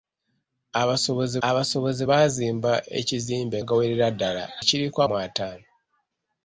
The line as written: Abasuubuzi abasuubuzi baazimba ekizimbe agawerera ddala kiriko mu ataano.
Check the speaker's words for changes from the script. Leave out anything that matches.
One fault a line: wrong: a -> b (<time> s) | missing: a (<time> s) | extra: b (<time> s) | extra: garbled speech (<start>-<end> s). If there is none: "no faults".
no faults